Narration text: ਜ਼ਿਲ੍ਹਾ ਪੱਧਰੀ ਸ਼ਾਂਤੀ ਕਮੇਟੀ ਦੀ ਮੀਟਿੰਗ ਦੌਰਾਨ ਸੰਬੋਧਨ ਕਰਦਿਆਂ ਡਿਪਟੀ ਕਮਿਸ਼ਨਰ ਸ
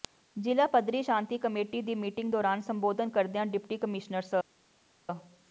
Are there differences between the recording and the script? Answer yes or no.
no